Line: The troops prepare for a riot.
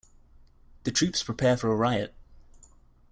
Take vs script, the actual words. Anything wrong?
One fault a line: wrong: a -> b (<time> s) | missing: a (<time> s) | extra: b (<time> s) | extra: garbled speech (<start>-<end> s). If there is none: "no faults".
no faults